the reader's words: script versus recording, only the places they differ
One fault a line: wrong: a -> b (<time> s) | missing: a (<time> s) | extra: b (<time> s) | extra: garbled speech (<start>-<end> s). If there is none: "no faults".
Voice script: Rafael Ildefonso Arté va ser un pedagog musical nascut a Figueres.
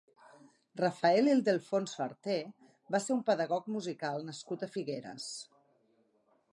no faults